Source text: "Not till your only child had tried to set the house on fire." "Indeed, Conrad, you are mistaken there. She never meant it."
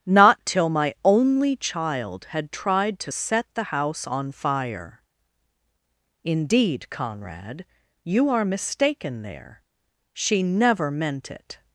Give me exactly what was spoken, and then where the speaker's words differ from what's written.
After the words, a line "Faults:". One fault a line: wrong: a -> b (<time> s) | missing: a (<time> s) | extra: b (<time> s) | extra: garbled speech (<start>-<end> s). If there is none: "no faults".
"Not till my only child had tried to set the house on fire." "Indeed, Conrad, you are mistaken there. She never meant it."
Faults:
wrong: your -> my (0.7 s)